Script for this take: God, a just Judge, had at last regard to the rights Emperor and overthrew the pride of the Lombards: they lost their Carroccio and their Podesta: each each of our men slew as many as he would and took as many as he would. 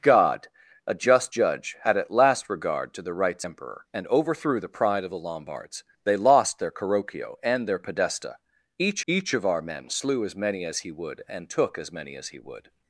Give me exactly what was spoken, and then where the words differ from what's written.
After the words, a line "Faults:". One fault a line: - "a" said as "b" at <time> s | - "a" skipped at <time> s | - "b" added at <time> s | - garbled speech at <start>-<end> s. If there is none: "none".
God, a just Judge, had at last regard to the rights Emperor and overthrew the pride of the Lombards: they lost their Carroccio and their Podesta: each each of our men slew as many as he would and took as many as he would.
Faults:
none